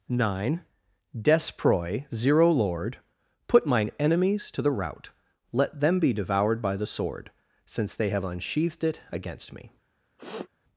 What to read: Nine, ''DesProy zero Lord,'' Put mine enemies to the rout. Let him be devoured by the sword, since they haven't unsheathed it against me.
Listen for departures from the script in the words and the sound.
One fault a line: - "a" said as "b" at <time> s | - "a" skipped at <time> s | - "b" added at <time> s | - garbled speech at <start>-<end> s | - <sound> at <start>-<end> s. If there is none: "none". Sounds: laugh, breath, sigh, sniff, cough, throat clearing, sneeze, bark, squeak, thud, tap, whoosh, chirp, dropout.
- "him" said as "them" at 5.8 s
- "haven't" said as "have" at 8.1 s
- sniff at 10.2-10.5 s